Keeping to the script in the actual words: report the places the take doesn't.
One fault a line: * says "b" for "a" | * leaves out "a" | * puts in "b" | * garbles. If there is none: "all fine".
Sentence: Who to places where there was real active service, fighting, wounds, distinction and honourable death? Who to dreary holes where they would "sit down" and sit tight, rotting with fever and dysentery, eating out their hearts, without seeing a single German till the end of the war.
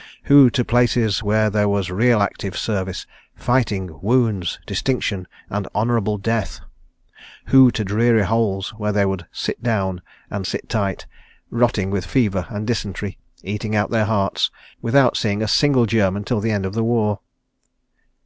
all fine